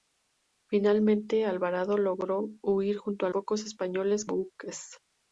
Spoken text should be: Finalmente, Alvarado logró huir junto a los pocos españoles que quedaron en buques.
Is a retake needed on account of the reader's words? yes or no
yes